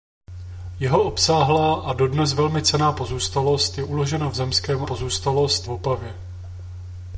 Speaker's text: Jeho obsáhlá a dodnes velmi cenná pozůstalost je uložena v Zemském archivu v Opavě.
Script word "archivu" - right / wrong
wrong